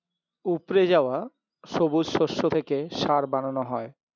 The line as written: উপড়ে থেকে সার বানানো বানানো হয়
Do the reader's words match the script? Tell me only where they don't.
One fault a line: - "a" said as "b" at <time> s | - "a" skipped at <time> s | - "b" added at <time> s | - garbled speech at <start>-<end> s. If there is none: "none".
- "যাওয়া সবুজ শস্য" added at 0.9 s
- "বানানো" skipped at 3.6 s